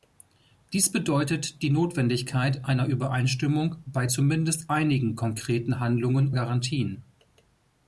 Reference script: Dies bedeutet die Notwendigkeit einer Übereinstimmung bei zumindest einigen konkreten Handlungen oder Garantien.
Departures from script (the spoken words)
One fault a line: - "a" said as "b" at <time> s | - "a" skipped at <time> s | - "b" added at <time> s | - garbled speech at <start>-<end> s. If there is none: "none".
- "oder" skipped at 6.3 s